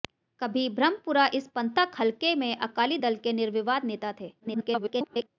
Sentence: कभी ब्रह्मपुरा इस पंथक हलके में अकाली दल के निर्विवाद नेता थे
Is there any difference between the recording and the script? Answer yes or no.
yes